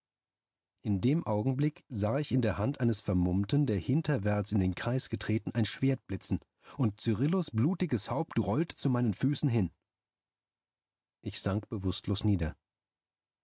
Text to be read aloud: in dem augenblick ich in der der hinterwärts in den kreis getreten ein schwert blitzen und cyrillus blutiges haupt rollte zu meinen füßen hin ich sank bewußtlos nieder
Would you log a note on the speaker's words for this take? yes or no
yes